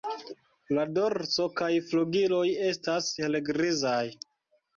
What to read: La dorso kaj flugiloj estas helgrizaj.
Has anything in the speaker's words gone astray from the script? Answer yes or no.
no